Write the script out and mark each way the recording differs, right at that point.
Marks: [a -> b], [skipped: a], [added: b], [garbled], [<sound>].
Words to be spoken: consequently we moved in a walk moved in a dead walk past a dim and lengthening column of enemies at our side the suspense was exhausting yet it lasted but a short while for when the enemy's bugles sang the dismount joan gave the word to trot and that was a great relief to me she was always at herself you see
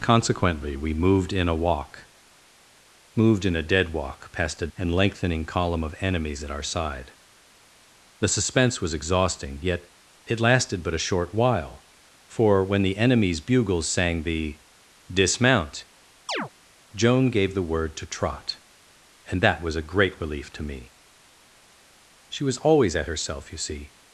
consequently we moved in a walk moved in a dead walk past a [skipped: dim] and lengthening column of enemies at our side the suspense was exhausting yet it lasted but a short while for when the enemy's bugles sang the dismount [chirp] joan gave the word to trot and that was a great relief to me she was always at herself you see